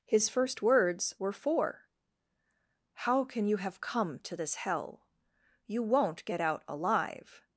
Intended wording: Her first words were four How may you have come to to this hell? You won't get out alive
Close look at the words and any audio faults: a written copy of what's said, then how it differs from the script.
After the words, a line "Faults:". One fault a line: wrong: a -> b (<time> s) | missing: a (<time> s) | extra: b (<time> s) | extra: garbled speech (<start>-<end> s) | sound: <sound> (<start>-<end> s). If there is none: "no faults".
His first words were four How can you have come to this hell? You won't get out alive
Faults:
wrong: Her -> His (0.1 s)
wrong: may -> can (3.2 s)
missing: to (4.4 s)